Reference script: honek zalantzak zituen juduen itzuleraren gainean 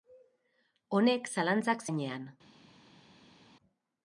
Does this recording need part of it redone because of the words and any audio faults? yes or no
yes